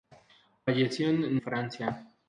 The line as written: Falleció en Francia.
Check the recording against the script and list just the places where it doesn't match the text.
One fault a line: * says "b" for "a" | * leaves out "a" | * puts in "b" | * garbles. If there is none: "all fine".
all fine